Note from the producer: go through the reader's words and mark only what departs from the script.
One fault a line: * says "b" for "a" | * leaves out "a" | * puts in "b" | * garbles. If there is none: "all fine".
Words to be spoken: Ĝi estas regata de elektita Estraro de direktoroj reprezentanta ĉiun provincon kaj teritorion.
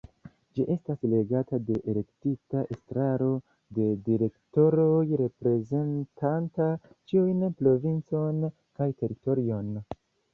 all fine